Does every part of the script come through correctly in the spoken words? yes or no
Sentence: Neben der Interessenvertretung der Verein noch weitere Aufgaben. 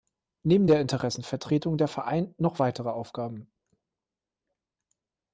yes